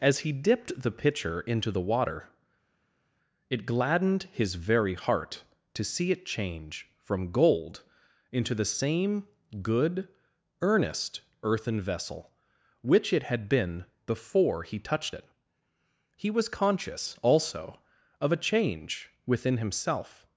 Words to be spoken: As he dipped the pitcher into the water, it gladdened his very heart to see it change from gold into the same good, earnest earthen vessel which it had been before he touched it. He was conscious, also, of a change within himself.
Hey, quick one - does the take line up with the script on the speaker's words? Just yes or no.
yes